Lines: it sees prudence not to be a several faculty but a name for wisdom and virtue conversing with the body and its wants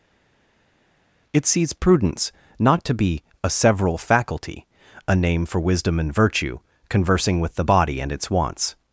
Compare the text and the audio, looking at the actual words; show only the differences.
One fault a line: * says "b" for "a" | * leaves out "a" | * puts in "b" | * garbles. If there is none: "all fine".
* leaves out "but"